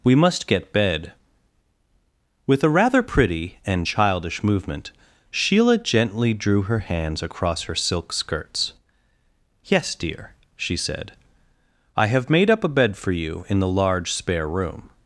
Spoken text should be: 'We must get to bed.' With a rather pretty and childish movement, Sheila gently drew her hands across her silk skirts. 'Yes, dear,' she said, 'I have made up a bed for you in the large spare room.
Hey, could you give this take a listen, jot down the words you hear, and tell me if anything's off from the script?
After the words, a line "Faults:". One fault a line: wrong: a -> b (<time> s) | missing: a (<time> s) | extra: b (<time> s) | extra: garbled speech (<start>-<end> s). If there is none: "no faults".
'We must get bed.' With a rather pretty and childish movement, Sheila gently drew her hands across her silk skirts. 'Yes, dear,' she said, 'I have made up a bed for you in the large spare room.
Faults:
missing: to (0.7 s)